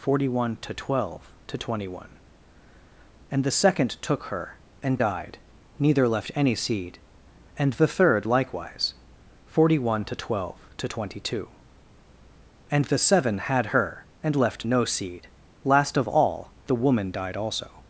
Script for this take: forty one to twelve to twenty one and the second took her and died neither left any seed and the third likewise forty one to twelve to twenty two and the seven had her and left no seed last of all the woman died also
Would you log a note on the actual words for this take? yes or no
no